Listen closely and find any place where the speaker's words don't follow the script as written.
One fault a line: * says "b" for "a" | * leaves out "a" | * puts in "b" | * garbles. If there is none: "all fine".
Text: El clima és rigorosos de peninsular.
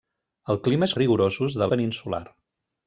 all fine